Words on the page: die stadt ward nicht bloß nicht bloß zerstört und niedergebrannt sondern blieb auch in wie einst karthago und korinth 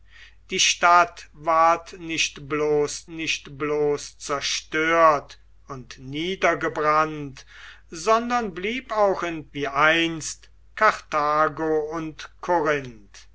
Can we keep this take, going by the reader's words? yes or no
yes